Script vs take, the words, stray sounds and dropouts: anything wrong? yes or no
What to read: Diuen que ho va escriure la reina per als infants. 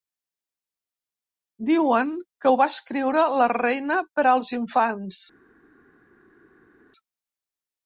no